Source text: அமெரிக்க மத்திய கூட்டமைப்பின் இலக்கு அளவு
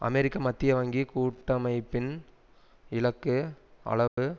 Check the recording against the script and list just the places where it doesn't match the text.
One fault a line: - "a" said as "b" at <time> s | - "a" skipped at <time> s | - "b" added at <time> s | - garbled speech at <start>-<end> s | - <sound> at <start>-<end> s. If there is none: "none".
- "வங்கி" added at 0.8 s
- dropout at 4.1-4.2 s